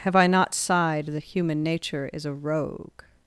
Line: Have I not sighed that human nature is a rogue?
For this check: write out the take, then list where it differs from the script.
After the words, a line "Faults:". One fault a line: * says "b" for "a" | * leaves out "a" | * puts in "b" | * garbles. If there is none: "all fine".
Have I not sighed that human nature is a rogue?
Faults:
all fine